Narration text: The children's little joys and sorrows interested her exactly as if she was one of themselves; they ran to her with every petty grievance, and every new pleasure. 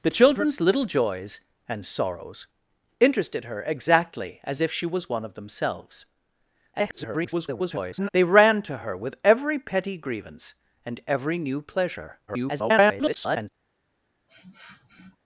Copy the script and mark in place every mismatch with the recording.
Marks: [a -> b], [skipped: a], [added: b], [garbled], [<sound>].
The children's little joys and sorrows interested her exactly as if she was one of themselves; [garbled] they ran to her with every petty grievance, and every new pleasure. [garbled] [sniff]